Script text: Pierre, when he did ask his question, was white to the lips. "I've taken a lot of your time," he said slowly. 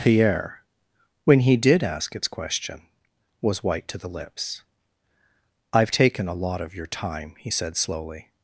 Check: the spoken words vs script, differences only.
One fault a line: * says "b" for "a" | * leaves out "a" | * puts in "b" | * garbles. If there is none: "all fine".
* says "its" for "his"